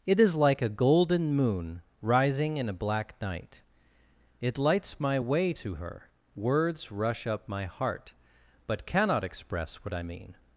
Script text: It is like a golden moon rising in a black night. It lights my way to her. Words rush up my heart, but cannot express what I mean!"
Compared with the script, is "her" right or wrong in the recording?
right